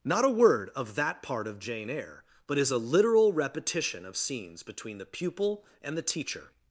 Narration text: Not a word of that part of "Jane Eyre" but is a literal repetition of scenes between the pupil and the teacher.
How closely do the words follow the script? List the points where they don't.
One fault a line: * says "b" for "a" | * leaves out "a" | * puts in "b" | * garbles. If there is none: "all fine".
all fine